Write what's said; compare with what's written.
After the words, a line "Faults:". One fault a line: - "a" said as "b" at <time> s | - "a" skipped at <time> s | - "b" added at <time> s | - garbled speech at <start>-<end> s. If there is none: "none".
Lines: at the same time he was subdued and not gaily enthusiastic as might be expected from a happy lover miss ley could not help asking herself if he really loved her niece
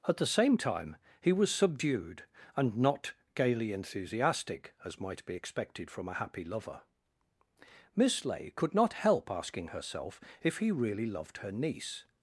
at the same time he was subdued and not gaily enthusiastic as might be expected from a happy lover miss ley could not help asking herself if he really loved her niece
Faults:
none